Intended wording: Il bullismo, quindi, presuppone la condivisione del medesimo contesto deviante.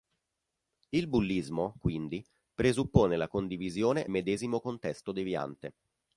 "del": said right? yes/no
no